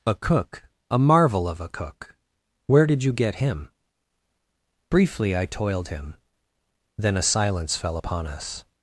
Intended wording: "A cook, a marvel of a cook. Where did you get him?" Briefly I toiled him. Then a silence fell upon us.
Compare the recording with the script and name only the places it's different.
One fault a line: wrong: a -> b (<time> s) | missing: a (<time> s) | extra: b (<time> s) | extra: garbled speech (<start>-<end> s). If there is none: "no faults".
no faults